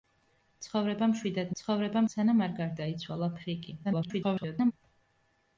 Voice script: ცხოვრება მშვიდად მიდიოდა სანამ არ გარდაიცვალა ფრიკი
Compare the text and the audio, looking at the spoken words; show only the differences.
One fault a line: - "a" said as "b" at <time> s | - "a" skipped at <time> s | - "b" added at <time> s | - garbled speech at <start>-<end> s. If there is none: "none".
- "მიდიოდა" said as "ცხოვრება" at 1.6 s
- garbled speech at 3.8-4.7 s